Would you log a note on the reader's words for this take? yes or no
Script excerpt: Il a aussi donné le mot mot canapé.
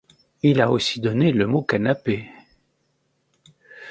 yes